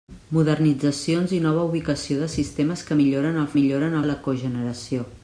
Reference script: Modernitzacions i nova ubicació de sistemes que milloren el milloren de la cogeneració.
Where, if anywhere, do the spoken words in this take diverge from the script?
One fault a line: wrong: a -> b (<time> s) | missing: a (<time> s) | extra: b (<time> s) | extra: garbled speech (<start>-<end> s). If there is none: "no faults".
no faults